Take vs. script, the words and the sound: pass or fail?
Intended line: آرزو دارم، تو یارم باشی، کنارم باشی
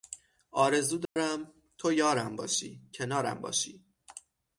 fail